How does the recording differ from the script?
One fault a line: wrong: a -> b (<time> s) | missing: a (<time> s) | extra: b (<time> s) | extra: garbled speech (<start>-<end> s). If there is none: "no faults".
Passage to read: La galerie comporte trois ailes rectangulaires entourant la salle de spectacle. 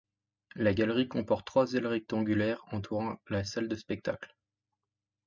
no faults